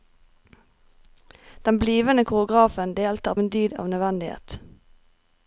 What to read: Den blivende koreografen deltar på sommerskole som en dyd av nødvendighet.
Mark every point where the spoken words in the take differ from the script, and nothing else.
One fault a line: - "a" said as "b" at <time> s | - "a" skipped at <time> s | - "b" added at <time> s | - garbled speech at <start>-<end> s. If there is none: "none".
- "på sommerskole som" skipped at 3.4 s